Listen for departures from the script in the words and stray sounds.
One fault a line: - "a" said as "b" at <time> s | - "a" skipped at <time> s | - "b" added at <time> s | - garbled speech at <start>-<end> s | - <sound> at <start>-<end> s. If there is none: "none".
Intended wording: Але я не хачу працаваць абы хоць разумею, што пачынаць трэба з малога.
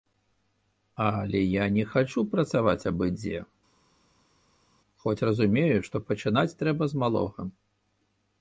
- "дзе" added at 3.2 s